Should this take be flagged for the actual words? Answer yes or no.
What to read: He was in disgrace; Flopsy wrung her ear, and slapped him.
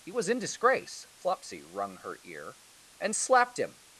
no